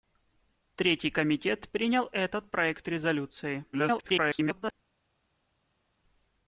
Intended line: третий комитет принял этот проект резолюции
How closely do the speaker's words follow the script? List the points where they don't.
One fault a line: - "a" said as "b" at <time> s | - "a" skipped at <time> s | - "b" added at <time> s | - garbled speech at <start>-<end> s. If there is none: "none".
- garbled speech at 3.7-4.7 s